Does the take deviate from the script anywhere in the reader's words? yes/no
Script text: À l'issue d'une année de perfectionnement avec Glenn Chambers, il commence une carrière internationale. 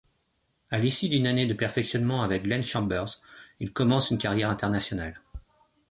no